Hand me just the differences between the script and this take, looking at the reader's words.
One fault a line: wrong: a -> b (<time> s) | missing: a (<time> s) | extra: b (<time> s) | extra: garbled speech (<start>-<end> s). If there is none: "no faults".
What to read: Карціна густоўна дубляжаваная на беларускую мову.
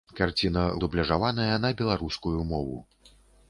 missing: густоўна (0.6 s)